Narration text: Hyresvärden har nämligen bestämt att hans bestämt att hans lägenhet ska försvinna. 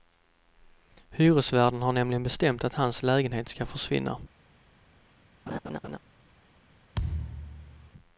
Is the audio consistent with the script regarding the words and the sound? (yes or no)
no